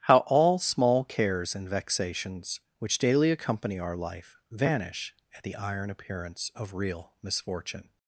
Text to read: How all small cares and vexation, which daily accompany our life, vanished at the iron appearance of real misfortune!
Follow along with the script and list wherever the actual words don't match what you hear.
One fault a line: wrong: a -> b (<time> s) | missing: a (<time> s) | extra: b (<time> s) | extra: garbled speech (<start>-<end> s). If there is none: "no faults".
wrong: vexation -> vexations (1.7 s)
wrong: vanished -> vanish (4.5 s)